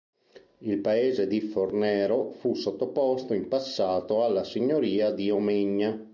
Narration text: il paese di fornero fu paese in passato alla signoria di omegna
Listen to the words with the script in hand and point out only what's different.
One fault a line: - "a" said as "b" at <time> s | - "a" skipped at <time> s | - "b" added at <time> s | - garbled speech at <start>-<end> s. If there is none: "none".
- "paese" said as "sottoposto" at 2.5 s